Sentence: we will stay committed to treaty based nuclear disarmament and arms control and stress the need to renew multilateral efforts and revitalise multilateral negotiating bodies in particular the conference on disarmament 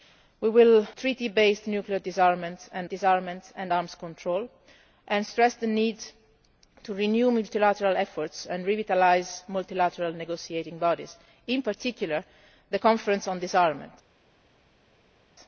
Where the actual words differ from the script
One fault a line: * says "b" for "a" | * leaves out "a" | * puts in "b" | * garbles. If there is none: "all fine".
* leaves out "stay committed to"
* puts in "disarmament and"